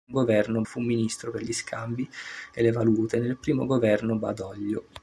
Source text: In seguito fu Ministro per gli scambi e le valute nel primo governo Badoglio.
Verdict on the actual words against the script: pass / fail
fail